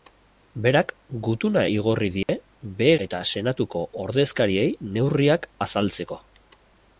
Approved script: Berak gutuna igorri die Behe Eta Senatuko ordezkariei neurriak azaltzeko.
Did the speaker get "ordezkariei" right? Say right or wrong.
right